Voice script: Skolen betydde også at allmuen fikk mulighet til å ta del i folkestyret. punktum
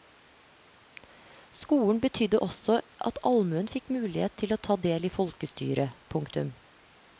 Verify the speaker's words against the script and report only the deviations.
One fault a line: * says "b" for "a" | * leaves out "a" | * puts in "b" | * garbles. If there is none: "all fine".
all fine